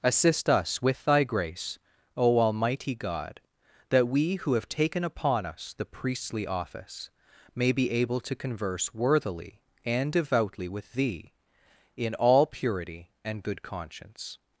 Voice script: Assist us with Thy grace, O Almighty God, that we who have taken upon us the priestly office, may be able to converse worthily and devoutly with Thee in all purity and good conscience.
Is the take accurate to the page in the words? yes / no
yes